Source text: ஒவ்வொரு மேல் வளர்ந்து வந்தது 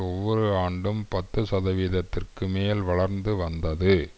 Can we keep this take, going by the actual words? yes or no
no